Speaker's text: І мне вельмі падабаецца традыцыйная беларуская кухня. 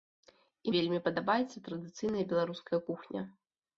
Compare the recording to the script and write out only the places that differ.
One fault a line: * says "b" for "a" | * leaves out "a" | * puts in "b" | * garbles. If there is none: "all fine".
* leaves out "мне"